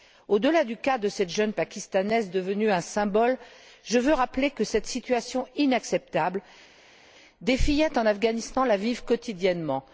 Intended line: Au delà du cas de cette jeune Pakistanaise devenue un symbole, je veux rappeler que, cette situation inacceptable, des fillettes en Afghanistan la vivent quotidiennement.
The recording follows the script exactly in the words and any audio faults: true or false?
true